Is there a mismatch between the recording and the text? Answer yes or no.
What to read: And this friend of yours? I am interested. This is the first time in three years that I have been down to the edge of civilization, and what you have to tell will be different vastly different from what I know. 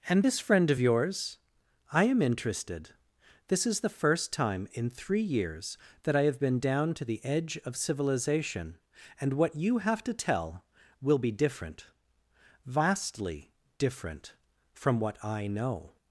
no